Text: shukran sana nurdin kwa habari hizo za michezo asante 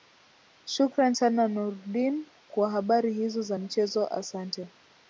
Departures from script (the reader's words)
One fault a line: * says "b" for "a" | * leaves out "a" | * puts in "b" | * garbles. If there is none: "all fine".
all fine